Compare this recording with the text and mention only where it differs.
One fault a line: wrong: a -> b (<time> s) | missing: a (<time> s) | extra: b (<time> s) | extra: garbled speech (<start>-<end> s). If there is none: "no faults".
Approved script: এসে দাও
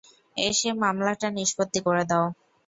extra: মামলাটা নিষ্পত্তি করে (0.8 s)